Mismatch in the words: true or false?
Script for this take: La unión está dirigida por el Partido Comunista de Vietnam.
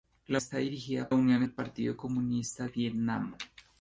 true